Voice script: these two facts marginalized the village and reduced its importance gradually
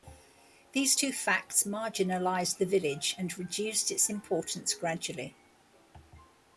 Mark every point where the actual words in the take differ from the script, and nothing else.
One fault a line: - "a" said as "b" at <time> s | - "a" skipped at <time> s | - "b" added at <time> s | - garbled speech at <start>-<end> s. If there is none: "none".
none